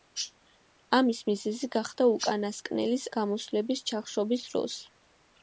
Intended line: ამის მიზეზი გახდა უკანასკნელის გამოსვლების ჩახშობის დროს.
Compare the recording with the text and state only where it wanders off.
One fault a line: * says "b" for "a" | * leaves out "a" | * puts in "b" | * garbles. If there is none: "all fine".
all fine